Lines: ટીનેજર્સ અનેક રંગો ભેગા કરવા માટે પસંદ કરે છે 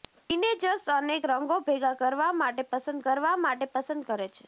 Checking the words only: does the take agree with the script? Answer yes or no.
no